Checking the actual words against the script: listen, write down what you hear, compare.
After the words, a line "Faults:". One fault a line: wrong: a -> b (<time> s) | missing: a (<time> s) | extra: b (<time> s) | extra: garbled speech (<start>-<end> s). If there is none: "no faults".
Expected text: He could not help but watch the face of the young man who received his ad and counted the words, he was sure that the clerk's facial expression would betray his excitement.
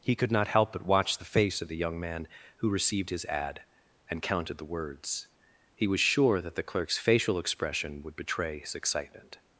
He could not help but watch the face of the young man who received his ad and counted the words, he was sure that the clerk's facial expression would betray his excitement.
Faults:
no faults